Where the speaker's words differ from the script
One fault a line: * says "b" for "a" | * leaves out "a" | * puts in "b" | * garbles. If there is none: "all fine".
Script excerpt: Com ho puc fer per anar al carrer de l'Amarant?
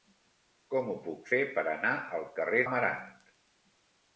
* leaves out "de"